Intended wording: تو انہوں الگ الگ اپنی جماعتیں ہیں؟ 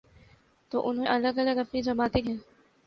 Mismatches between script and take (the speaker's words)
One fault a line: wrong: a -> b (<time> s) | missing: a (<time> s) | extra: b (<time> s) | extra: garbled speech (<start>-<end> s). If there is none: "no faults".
no faults